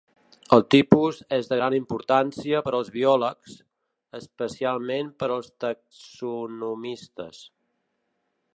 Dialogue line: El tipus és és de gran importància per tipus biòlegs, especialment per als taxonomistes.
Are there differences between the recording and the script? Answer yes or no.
yes